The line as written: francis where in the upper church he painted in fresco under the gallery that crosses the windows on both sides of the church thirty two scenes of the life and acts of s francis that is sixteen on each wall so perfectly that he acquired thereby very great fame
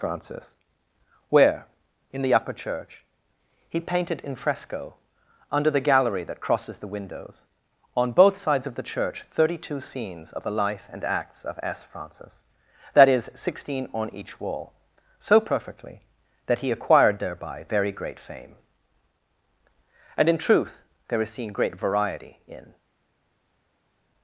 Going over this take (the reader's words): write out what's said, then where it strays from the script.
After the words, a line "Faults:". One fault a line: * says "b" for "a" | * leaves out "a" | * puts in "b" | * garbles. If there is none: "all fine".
francis where in the upper church he painted in fresco under the gallery that crosses the windows on both sides of the church thirty two scenes of the life and acts of s francis that is sixteen on each wall so perfectly that he acquired thereby very great fame and in truth there is seen great variety in
Faults:
* puts in "and in truth there is seen great variety in"